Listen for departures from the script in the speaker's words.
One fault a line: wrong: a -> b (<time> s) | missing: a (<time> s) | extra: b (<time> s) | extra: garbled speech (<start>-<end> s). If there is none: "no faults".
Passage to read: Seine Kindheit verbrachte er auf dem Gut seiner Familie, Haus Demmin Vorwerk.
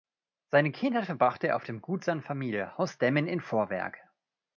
extra: in (3.3 s)